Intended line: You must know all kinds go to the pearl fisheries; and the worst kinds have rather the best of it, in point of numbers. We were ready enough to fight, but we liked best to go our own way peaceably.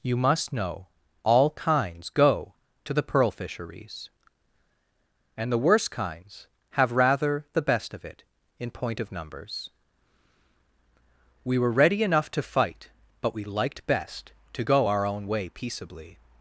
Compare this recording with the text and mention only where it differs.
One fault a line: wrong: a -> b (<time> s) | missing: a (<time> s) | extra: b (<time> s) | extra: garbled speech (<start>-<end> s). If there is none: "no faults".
no faults